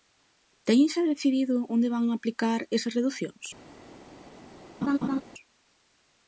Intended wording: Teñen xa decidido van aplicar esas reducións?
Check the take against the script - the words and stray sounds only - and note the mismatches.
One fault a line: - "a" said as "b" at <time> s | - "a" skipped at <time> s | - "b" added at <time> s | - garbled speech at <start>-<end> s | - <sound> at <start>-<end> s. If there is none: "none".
- "onde" added at 1.7 s
- laugh at 4.8-5.2 s